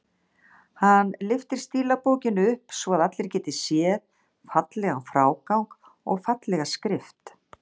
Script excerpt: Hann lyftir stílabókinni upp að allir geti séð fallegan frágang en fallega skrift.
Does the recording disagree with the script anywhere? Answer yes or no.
yes